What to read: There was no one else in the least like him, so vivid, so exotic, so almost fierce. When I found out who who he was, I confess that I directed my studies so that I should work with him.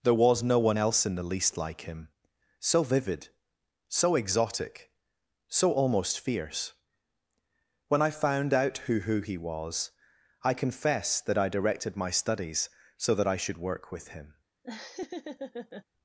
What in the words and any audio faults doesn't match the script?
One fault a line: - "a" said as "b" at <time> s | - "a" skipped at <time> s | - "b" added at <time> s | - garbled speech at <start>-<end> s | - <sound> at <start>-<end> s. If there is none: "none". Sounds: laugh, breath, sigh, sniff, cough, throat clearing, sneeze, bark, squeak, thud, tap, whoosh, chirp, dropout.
- laugh at 14.6-15.8 s